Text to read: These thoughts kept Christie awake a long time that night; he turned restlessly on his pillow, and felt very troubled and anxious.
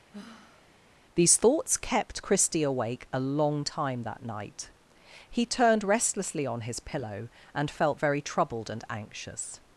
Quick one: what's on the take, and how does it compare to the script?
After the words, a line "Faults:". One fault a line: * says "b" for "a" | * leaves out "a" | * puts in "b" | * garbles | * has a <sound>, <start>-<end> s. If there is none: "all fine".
These thoughts kept Christie awake a long time that night; he turned restlessly on his pillow, and felt very troubled and anxious.
Faults:
* has a sigh, 0.1-0.8 s